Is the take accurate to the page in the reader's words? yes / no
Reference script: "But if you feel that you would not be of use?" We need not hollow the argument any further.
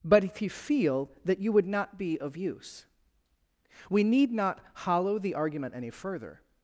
yes